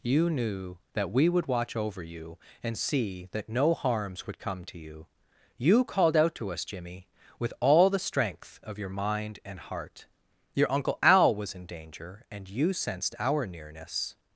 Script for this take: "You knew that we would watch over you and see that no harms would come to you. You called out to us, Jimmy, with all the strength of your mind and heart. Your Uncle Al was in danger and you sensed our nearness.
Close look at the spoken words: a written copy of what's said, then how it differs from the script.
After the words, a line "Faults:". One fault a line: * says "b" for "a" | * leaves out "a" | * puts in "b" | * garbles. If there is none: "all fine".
"You knew that we would watch over you and see that no harms would come to you. You called out to us, Jimmy, with all the strength of your mind and heart. Your Uncle Al was in danger and you sensed our nearness.
Faults:
all fine